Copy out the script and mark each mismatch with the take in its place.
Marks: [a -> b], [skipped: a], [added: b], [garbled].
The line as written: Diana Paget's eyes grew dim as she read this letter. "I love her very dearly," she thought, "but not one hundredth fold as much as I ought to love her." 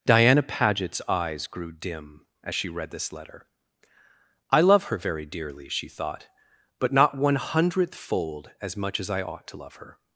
Diana Paget's eyes grew dim as she read this letter. "I love her very dearly," she thought, "but not one hundredth fold as much as I ought to love her."